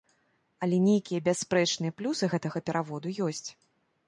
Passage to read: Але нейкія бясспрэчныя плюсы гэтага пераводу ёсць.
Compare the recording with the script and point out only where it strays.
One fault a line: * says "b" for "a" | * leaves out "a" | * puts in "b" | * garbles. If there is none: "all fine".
all fine